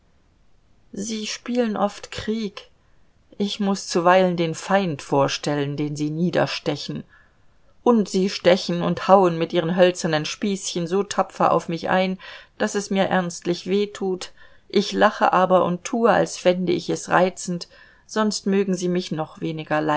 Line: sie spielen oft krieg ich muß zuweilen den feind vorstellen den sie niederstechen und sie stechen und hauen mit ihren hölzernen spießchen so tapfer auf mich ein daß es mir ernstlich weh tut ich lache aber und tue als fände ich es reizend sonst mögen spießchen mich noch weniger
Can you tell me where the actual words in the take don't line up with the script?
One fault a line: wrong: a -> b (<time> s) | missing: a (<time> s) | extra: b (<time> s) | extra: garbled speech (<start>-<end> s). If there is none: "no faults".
wrong: spießchen -> sie (18.7 s)